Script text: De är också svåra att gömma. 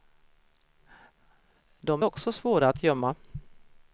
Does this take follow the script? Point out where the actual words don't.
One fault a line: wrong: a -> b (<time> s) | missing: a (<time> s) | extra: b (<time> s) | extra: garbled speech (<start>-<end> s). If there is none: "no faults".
no faults